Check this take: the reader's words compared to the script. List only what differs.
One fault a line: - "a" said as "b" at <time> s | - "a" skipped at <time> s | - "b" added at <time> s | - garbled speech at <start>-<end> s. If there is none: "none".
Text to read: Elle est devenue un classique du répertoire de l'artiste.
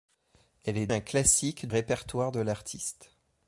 - "devenue" skipped at 0.9 s
- "du" skipped at 1.7 s